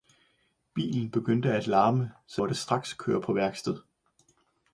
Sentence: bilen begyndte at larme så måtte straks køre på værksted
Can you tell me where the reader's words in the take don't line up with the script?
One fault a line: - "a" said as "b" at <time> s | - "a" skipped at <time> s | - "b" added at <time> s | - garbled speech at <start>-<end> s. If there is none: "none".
none